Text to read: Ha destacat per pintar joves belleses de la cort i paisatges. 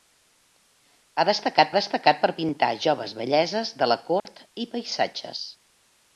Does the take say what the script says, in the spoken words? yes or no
no